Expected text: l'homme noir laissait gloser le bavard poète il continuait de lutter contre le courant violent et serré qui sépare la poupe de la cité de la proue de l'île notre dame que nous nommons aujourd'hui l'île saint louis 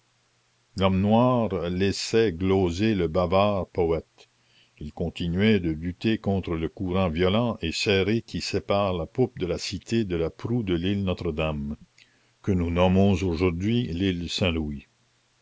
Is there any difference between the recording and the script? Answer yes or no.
no